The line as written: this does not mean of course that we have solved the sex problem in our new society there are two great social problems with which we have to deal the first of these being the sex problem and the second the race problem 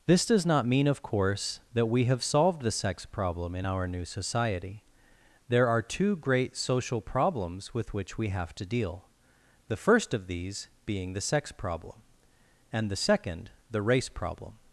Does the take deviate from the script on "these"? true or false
false